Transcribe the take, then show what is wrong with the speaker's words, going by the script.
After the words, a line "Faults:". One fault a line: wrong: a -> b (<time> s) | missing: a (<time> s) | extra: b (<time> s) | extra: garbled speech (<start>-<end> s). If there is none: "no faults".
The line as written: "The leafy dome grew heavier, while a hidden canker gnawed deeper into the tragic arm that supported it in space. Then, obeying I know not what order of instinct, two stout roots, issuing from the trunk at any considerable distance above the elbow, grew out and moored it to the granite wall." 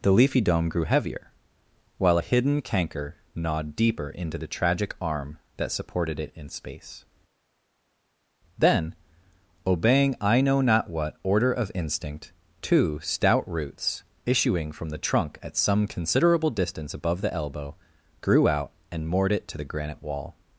"The leafy dome grew heavier, while a hidden canker gnawed deeper into the tragic arm that supported it in space. Then, obeying I know not what order of instinct, two stout roots, issuing from the trunk at some considerable distance above the elbow, grew out and moored it to the granite wall."
Faults:
wrong: any -> some (15.6 s)